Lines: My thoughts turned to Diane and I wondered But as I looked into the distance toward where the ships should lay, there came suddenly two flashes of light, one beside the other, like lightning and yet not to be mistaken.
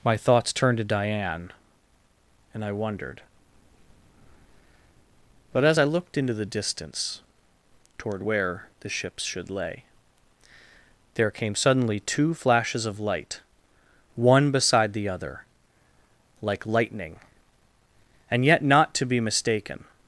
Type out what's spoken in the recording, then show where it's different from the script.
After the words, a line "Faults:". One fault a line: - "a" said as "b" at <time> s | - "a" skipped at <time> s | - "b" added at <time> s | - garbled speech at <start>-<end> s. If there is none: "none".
My thoughts turned to Diane and I wondered But as I looked into the distance toward where the ships should lay, there came suddenly two flashes of light, one beside the other, like lightning and yet not to be mistaken.
Faults:
none